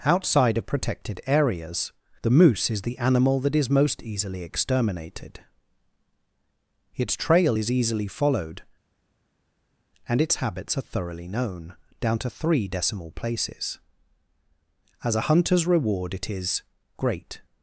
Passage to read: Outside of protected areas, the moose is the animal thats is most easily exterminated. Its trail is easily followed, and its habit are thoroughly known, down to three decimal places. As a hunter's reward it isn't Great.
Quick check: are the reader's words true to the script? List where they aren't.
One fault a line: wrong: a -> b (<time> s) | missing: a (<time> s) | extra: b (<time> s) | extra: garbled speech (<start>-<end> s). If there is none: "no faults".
wrong: thats -> that (3.4 s)
wrong: habit -> habits (10.4 s)
wrong: isn't -> is (16.3 s)